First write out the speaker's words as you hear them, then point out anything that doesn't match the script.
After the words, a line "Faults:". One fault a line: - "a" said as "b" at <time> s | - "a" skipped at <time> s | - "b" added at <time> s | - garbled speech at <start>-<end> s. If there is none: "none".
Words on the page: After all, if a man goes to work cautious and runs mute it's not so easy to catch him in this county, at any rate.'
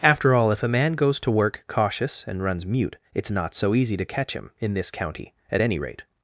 After all, if a man goes to work cautious and runs mute it's not so easy to catch him in this county, at any rate.'
Faults:
none